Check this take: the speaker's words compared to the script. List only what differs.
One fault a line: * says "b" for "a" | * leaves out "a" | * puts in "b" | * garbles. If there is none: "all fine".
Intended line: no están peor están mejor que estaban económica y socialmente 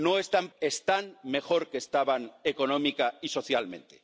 * leaves out "peor"